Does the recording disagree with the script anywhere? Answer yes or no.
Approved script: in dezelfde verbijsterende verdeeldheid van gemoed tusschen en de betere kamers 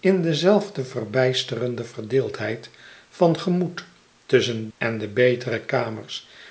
no